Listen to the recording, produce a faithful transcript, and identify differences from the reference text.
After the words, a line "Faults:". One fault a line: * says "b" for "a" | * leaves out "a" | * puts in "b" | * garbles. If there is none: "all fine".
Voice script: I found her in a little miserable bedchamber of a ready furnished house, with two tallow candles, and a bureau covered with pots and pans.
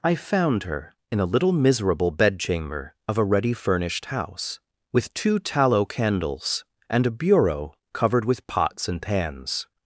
I found her in a little miserable bedchamber of a ready furnished house, with two tallow candles, and a bureau covered with pots and pans.
Faults:
all fine